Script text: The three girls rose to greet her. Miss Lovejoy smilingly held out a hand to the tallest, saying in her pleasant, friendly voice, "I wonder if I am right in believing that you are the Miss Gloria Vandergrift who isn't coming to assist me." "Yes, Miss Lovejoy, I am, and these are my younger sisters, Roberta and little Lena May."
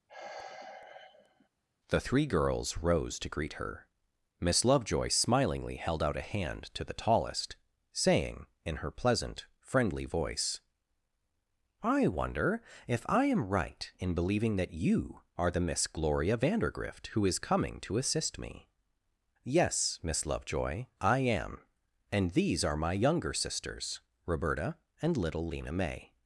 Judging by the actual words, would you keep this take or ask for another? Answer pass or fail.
fail